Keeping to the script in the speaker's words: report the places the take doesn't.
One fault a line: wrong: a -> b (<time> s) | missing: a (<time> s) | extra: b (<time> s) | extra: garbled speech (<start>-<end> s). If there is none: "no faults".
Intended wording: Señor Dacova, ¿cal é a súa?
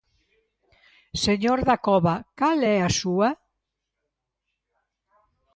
no faults